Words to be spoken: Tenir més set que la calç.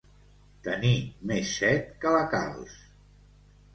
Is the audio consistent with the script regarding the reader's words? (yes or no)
yes